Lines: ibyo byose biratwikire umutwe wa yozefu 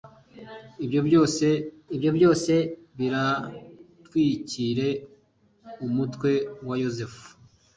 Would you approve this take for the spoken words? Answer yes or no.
no